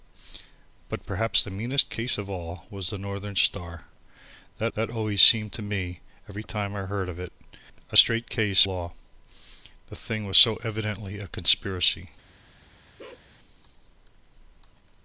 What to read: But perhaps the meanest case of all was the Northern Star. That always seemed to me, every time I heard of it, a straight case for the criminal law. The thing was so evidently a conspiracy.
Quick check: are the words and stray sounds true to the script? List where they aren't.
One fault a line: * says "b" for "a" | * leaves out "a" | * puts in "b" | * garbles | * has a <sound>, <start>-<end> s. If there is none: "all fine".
* puts in "that"
* leaves out "for the criminal"
* has a bark, 13.0-13.3 s